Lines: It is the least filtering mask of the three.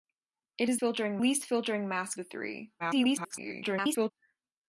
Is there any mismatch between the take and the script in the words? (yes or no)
yes